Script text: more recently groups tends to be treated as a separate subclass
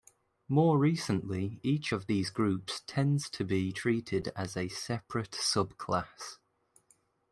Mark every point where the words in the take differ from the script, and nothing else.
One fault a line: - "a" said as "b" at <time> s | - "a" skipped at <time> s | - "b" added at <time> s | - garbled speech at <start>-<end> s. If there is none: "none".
- "each of these" added at 1.6 s